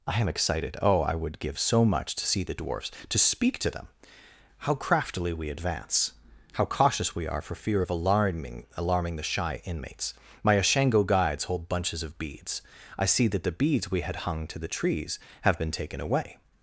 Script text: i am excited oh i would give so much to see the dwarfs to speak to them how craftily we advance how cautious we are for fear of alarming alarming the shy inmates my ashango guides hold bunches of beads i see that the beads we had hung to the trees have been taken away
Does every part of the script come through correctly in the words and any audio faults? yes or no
yes